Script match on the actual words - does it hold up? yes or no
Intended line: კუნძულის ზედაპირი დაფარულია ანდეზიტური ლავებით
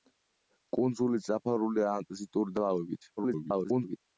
no